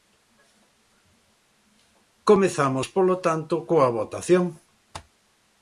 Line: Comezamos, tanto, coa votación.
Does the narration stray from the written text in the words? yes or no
yes